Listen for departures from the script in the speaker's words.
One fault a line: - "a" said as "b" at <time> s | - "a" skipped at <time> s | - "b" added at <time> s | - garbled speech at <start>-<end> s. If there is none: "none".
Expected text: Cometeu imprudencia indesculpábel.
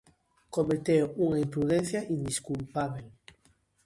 - "unha" added at 1.2 s